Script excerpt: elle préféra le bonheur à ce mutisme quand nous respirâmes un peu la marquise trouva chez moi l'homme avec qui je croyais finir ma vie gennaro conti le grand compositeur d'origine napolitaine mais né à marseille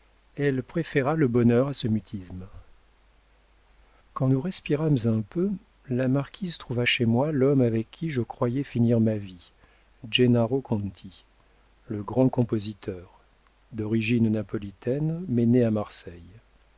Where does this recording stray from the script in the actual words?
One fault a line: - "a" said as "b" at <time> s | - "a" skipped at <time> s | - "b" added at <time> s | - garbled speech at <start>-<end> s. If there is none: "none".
none